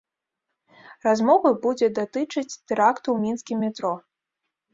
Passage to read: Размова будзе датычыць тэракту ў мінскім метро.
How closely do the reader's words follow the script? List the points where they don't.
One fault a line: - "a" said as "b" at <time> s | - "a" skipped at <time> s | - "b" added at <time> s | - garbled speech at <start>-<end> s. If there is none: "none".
none